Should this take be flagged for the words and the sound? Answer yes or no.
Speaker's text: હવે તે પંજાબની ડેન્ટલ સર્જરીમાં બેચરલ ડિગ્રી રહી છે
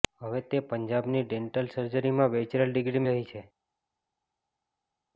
no